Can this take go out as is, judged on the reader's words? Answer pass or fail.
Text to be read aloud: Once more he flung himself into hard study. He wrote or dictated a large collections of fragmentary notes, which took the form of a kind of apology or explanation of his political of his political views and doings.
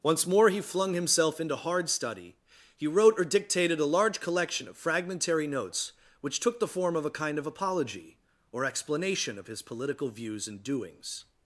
fail